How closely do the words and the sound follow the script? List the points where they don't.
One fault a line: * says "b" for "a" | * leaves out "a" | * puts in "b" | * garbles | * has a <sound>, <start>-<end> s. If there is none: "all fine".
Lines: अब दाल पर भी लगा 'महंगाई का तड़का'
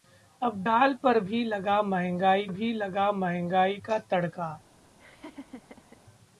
* puts in "भी लगा महंगाई"
* has a laugh, 5.0-6.0 s